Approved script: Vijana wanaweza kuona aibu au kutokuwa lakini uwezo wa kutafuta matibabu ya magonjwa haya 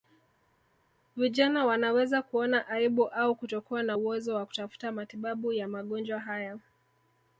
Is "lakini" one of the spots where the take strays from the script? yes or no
yes